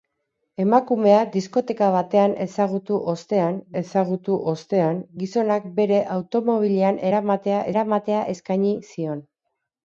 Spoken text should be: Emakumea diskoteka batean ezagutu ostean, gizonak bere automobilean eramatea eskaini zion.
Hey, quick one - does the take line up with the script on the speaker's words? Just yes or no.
no